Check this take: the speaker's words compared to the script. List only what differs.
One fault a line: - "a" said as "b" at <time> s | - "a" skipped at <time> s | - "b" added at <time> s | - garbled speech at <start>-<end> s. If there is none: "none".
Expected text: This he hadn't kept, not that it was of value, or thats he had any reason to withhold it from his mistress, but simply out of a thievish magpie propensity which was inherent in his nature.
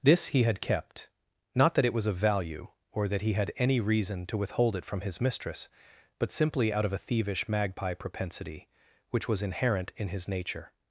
- "hadn't" said as "had" at 0.4 s
- "thats" said as "that" at 3.1 s